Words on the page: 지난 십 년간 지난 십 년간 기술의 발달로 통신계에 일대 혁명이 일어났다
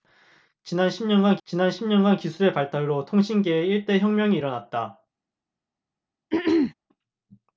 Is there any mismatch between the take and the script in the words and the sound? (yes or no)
yes